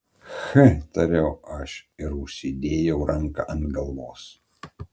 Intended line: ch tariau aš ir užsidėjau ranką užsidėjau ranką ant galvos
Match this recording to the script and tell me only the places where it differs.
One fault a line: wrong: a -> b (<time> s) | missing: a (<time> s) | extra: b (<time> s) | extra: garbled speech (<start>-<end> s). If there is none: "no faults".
missing: užsidėjau ranką (3.5 s)